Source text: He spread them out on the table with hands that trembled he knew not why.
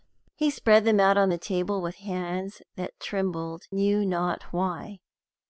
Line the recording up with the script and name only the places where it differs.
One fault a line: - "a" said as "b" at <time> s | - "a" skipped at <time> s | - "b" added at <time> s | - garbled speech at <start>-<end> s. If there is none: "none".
- "he" skipped at 3.6 s